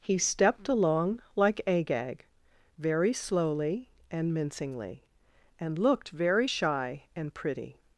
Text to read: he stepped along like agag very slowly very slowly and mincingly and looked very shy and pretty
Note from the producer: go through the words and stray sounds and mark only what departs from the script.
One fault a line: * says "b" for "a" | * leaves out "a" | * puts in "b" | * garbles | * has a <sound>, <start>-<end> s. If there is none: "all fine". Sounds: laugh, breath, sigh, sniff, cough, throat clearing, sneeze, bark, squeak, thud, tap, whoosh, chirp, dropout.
* leaves out "very slowly"